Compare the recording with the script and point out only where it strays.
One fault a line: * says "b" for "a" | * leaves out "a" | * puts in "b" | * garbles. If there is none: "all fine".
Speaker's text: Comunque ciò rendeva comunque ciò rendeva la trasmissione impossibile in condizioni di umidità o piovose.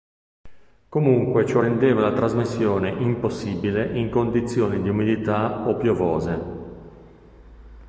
* leaves out "comunque ciò rendeva"